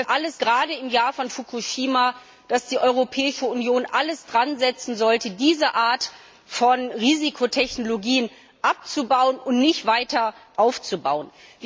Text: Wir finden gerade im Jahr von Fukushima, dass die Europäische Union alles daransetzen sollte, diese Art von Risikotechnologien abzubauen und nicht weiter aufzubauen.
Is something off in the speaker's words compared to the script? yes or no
yes